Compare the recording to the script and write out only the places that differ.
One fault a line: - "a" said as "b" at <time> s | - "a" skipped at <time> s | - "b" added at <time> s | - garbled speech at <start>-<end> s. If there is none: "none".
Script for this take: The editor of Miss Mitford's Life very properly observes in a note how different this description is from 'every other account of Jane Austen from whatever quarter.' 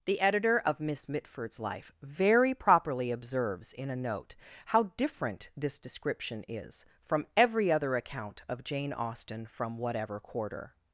none